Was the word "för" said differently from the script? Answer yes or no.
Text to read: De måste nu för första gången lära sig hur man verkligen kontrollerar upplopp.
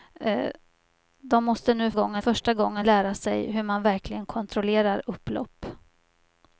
yes